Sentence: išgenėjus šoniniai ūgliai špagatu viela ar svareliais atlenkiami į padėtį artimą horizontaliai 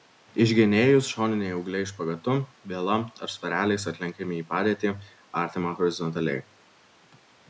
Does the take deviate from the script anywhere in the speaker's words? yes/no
no